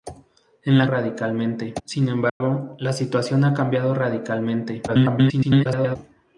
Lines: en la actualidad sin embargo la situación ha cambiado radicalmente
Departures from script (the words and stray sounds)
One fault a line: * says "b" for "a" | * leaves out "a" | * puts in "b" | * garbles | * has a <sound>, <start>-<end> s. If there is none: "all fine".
* says "radicalmente" for "actualidad"
* has a dropout, 2.3-2.4 s
* garbles